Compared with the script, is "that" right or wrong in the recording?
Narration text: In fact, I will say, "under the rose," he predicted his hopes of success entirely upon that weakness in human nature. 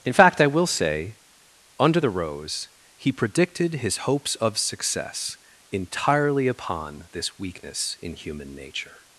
wrong